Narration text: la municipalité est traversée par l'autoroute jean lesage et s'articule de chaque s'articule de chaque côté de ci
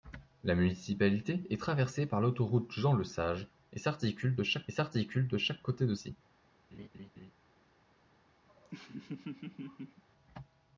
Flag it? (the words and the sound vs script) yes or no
yes